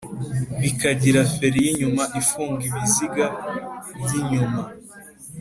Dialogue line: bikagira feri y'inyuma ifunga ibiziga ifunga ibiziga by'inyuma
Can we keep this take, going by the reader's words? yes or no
no